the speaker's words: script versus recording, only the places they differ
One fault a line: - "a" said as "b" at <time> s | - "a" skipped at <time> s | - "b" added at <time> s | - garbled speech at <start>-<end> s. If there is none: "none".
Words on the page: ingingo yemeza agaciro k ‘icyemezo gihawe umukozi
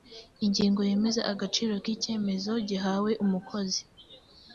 none